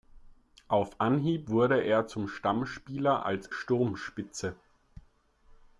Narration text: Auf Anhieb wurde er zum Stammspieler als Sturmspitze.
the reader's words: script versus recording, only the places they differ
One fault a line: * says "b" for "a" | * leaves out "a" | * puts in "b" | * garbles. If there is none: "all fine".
all fine